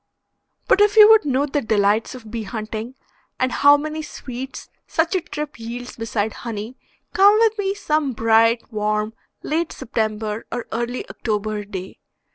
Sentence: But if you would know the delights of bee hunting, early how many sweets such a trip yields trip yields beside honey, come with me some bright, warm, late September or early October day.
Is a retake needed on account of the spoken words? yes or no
yes